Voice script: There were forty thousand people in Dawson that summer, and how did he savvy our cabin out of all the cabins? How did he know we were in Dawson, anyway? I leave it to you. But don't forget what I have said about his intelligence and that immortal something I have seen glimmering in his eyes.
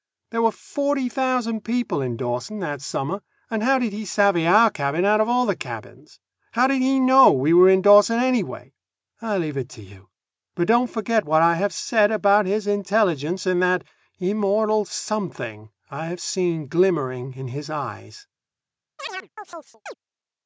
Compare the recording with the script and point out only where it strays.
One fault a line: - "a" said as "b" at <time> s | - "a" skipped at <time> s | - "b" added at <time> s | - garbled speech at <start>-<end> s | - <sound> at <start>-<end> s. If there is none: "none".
- chirp at 19.0-19.9 s